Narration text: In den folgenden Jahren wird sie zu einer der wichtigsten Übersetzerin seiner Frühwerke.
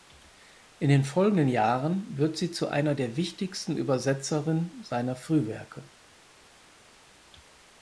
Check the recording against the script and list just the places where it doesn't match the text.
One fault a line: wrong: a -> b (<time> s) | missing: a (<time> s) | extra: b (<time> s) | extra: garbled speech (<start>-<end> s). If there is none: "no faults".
no faults